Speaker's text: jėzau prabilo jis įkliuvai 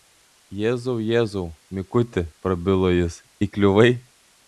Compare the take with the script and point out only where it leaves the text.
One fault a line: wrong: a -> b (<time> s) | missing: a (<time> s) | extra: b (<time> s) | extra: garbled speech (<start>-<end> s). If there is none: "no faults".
extra: jėzau mikuti (1.1 s)